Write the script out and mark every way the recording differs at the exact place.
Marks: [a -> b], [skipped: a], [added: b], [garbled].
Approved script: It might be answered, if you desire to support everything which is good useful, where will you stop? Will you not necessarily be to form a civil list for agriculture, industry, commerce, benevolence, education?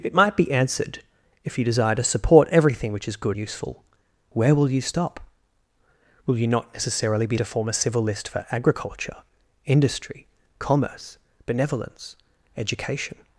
It might be answered, if you desire to support everything which is good useful, where will you stop? Will you not necessarily be to form a civil list for agriculture, industry, commerce, benevolence, education?